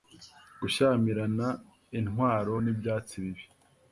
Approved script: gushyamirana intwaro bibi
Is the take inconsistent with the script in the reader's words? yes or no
yes